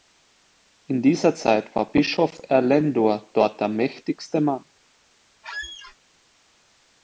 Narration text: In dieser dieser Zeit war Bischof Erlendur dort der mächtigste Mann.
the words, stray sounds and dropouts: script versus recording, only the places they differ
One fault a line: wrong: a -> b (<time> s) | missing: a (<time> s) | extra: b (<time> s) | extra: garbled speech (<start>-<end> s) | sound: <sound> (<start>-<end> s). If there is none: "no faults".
missing: dieser (1.4 s)
sound: squeak (5.4-6.0 s)